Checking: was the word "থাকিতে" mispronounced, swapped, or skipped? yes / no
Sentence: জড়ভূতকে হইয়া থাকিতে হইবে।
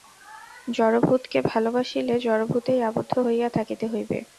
no